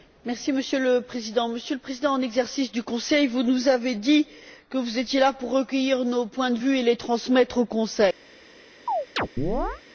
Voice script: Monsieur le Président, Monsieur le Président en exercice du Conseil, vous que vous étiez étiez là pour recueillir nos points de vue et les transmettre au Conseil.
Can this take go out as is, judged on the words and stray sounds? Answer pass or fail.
fail